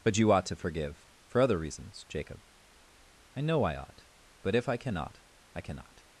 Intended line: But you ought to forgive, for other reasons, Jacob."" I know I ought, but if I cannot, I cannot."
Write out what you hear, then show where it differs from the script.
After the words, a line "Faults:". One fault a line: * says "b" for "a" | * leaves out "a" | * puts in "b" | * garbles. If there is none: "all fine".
But you ought to forgive, for other reasons, Jacob."" I know I ought, but if I cannot, I cannot."
Faults:
all fine